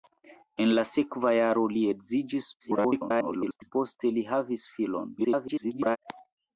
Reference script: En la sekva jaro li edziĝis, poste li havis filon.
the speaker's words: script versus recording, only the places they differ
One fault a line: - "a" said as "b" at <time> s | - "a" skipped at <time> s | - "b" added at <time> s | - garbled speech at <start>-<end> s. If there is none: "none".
- garbled speech at 2.6-3.7 s
- garbled speech at 5.2-6.0 s